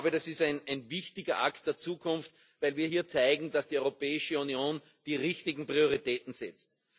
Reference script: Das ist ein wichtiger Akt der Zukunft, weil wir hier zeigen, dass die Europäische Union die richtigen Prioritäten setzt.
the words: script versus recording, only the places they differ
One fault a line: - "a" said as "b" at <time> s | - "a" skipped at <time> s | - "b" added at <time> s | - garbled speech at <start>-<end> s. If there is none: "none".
none